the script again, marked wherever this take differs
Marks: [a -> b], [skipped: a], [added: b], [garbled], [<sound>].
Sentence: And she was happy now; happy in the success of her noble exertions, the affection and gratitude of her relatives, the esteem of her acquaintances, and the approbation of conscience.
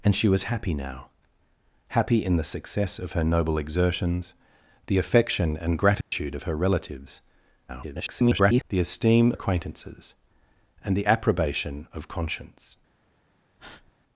And she was happy now; happy in the success of her noble exertions, the affection and gratitude [dropout] of her relatives, [garbled] the esteem [skipped: of her] acquaintances, and the approbation of conscience. [breath]